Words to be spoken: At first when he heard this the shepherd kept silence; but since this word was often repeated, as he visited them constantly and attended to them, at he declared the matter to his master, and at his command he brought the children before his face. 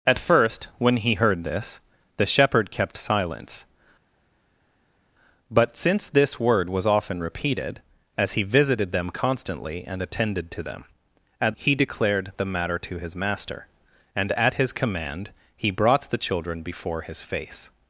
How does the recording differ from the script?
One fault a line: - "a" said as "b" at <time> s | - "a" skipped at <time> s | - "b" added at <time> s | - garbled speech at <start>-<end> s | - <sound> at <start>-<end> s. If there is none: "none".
none